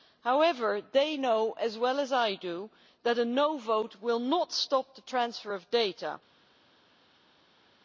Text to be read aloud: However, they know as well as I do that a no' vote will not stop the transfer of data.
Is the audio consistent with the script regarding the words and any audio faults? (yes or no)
yes